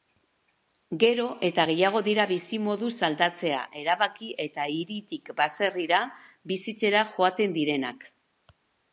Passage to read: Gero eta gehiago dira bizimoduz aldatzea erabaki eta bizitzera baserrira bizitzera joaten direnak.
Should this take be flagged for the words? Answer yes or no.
yes